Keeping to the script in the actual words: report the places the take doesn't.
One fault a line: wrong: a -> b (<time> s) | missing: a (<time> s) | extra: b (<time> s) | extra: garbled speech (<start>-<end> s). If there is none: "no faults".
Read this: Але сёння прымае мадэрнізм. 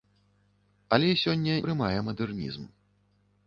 no faults